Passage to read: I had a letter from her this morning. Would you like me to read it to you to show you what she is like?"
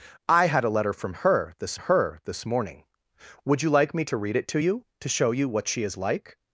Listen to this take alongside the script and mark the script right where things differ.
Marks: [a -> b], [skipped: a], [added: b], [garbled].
I had a letter from her this [added: her this] morning. Would you like me to read it to you to show you what she is like?"